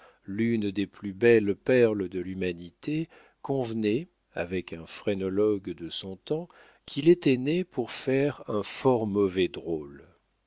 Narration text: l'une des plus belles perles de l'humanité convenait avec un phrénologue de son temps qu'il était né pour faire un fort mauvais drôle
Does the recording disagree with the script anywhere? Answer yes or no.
no